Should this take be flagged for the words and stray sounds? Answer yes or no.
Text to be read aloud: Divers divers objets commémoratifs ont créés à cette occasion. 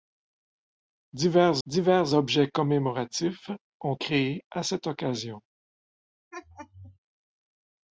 yes